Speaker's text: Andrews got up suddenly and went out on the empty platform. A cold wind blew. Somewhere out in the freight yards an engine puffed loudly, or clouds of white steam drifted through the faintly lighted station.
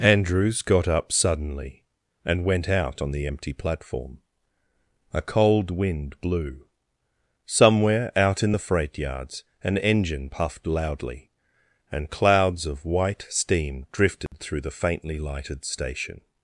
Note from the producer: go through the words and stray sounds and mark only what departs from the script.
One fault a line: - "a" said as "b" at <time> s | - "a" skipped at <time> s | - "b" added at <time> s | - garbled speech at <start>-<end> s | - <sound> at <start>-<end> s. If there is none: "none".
- "or" said as "and" at 11.9 s
- dropout at 14.3-14.3 s